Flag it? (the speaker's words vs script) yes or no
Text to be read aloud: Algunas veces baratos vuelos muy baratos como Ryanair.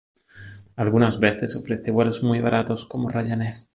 yes